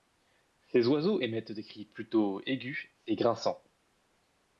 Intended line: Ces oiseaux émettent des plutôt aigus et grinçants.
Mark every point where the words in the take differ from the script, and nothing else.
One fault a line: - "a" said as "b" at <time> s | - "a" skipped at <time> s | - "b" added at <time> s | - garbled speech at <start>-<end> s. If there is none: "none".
- "cris" added at 1.6 s